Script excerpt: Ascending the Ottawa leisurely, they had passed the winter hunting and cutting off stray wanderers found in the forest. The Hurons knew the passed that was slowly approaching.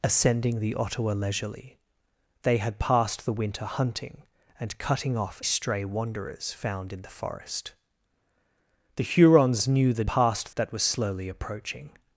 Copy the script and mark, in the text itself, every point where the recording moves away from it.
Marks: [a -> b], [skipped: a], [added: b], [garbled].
Ascending the Ottawa leisurely, they had passed the winter hunting and cutting off stray wanderers found in the forest. The Hurons knew the passed that was slowly approaching.